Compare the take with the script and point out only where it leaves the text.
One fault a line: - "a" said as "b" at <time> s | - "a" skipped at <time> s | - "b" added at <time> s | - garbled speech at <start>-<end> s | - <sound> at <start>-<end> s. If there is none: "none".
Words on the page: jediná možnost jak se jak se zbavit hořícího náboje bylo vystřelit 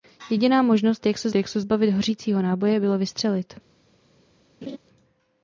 - laugh at 4.6-4.8 s